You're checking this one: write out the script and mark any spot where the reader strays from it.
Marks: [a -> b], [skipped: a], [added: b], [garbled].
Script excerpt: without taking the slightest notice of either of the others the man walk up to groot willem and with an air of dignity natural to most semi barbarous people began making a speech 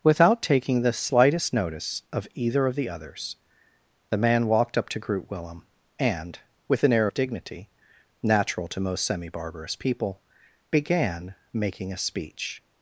without taking the slightest notice of either of the others the man [walk -> walked] up to groot willem and with an air of dignity natural to most semi barbarous people began making a speech